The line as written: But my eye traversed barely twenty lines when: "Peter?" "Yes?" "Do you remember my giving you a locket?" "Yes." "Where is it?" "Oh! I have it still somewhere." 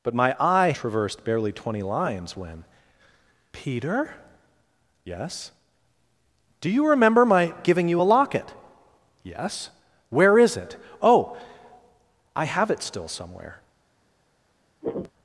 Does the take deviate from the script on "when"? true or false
false